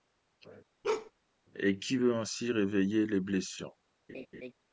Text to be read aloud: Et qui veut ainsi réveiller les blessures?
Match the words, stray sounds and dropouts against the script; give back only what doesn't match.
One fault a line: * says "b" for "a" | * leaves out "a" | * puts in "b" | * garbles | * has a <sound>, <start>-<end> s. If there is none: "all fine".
* has a bark, 0.8-1.1 s
* has a laugh, 4.1-4.5 s